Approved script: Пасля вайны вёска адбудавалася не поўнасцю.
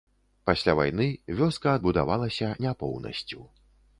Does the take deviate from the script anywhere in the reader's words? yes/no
no